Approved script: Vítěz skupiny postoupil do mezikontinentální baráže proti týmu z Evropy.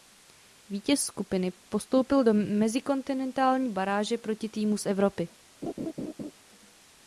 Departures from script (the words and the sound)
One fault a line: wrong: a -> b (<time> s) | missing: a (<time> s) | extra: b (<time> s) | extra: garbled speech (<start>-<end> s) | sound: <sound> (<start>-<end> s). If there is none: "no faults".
sound: laugh (5.6-6.3 s)